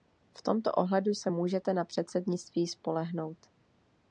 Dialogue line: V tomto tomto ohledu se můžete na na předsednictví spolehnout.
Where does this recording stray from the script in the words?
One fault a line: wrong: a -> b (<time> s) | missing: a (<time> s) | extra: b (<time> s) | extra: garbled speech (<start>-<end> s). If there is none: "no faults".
missing: tomto (0.7 s)
missing: na (1.8 s)